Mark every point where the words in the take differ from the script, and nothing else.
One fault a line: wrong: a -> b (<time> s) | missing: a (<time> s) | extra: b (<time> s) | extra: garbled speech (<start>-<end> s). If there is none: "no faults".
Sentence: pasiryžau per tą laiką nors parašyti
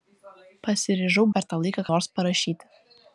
no faults